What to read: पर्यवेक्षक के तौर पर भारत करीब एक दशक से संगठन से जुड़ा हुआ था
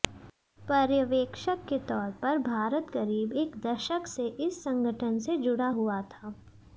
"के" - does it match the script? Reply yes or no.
yes